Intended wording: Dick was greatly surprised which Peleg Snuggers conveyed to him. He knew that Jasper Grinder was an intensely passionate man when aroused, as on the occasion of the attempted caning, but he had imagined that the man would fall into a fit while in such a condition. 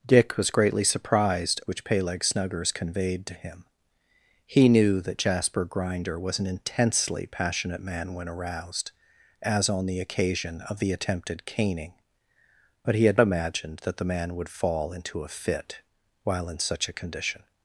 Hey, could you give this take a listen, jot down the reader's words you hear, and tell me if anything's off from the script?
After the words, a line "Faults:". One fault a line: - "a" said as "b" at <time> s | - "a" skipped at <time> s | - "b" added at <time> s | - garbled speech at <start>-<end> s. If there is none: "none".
Dick was greatly surprised which Peleg Snuggers conveyed to him. He knew that Jasper Grinder was an intensely passionate man when aroused, as on the occasion of the attempted caning, but he had imagined that the man would fall into a fit while in such a condition.
Faults:
none